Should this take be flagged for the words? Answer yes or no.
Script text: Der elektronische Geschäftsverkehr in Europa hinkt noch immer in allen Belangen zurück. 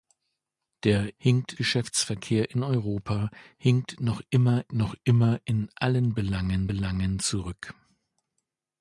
yes